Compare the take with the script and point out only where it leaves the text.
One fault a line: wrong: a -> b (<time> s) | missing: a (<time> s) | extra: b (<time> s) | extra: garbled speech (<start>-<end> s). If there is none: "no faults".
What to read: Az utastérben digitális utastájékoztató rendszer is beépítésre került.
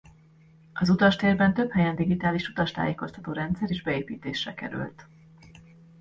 extra: több helyen (1.5 s)